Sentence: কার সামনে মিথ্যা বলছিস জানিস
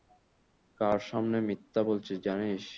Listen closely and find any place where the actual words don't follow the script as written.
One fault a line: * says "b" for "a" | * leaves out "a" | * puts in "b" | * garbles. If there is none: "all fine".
all fine